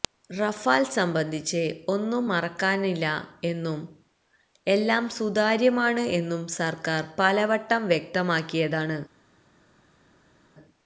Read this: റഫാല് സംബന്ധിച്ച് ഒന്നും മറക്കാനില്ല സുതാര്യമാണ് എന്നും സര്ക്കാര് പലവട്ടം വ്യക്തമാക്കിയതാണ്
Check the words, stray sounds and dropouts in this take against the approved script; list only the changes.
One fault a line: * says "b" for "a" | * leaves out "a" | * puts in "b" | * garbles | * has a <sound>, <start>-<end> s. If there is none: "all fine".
* puts in "എന്നും എല്ലാം"